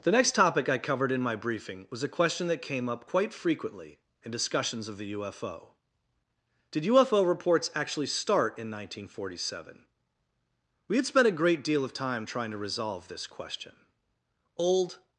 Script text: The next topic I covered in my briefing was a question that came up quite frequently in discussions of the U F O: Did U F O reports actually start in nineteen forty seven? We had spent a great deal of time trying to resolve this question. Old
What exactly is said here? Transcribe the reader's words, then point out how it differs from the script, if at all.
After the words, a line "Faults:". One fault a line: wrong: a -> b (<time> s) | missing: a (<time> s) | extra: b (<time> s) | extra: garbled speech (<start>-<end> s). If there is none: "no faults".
The next topic I covered in my briefing was a question that came up quite frequently in discussions of the U F O: Did U F O reports actually start in nineteen forty seven? We had spent a great deal of time trying to resolve this question. Old
Faults:
no faults